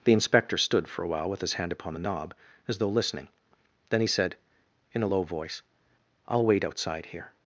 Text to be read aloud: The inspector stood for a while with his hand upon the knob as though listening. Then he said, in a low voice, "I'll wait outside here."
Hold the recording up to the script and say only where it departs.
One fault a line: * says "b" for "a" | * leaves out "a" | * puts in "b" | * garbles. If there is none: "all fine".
all fine